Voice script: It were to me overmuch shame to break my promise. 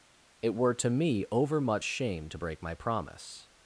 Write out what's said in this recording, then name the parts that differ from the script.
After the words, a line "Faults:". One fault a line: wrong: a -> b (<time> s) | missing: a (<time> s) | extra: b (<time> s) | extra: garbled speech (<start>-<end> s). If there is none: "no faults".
It were to me overmuch shame to break my promise.
Faults:
no faults